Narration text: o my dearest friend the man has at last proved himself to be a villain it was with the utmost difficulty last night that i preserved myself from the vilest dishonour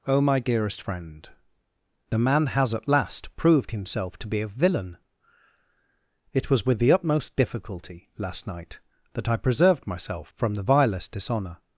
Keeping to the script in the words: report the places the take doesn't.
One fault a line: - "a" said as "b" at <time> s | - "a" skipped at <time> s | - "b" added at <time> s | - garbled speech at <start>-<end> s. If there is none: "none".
none